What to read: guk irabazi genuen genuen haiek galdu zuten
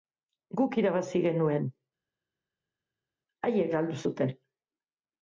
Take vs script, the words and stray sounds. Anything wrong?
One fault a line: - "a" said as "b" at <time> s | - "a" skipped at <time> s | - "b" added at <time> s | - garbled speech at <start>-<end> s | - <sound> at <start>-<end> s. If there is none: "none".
- "genuen" skipped at 1.7 s